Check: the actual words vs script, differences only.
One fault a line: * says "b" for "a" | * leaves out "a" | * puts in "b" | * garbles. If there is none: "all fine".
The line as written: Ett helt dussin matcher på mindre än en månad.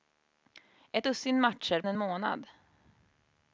* leaves out "helt"
* leaves out "på mindre än"